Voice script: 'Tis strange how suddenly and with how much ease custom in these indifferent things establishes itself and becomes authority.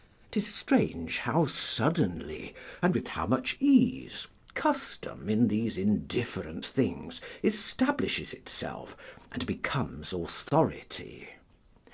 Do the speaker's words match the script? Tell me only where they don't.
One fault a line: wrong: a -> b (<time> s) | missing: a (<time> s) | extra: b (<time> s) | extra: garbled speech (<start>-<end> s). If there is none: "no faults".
no faults